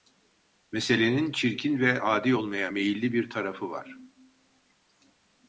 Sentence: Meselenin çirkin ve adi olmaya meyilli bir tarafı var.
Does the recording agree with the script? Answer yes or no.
yes